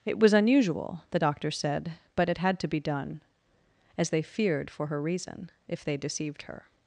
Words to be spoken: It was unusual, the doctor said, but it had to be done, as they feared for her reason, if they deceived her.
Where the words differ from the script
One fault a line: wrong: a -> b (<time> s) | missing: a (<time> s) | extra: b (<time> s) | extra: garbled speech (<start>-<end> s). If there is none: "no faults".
no faults